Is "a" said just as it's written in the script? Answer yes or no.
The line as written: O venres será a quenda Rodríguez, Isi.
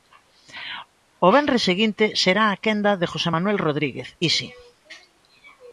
yes